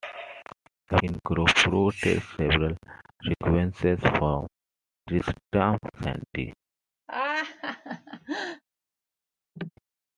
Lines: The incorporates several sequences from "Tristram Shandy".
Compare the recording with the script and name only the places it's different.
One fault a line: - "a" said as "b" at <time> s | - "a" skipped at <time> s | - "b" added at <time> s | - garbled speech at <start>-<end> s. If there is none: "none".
none